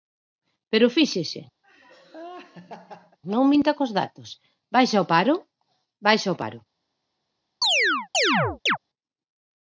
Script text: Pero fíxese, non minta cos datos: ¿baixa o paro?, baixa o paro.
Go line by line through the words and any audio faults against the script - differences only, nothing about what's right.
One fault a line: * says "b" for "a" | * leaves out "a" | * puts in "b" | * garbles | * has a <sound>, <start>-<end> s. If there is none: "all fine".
* has a laugh, 1.6-3.2 s
* has a chirp, 7.6-8.8 s